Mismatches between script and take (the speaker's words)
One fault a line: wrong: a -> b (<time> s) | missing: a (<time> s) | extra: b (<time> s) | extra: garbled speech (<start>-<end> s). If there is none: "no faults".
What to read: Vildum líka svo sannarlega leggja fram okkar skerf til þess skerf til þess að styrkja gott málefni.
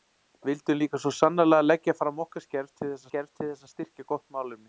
no faults